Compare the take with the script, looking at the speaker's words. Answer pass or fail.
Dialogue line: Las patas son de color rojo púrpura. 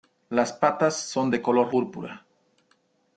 fail